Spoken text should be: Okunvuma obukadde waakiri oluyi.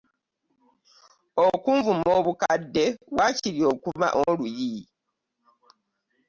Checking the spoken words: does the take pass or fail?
pass